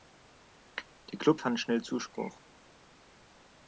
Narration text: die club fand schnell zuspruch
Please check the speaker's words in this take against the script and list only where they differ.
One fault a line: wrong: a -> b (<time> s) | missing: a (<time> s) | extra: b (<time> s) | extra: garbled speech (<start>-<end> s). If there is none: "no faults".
no faults